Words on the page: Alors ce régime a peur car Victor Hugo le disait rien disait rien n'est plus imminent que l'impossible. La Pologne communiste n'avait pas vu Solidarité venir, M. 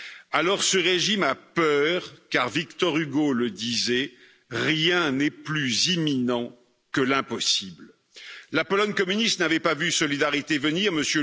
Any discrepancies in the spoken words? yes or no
yes